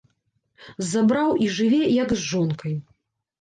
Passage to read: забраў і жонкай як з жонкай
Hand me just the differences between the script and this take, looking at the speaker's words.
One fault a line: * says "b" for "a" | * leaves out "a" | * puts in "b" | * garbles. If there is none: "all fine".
* says "жыве" for "жонкай"